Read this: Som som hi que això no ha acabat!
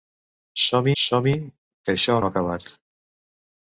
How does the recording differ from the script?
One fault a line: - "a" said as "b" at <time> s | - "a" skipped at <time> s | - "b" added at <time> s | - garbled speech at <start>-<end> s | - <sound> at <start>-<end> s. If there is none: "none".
none